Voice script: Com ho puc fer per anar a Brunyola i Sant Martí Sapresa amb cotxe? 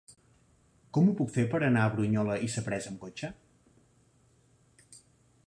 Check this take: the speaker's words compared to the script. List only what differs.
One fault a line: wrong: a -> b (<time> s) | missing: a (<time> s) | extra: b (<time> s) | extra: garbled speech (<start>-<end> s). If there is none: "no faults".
missing: Sant Martí (2.5 s)